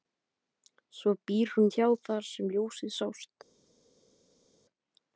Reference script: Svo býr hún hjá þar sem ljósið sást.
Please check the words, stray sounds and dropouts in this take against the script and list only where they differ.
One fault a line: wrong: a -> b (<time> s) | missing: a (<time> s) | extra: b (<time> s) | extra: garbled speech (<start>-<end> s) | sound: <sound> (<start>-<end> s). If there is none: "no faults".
no faults